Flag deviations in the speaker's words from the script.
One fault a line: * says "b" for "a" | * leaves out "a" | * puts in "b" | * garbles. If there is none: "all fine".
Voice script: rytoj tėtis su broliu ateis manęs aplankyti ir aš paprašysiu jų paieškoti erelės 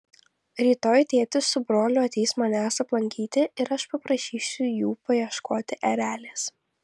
all fine